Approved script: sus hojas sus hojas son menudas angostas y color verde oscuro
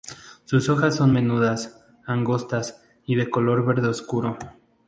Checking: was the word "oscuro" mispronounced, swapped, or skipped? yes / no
no